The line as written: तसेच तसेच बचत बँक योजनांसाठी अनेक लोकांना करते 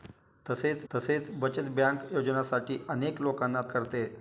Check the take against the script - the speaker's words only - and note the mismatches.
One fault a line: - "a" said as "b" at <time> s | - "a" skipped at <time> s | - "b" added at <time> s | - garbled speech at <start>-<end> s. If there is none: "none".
none